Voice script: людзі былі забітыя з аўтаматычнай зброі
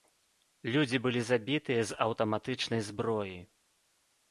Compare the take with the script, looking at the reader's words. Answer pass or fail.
pass